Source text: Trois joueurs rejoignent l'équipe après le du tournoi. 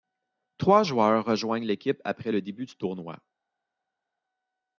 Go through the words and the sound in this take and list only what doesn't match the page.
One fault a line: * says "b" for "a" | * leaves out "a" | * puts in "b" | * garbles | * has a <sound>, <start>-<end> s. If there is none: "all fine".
* puts in "début"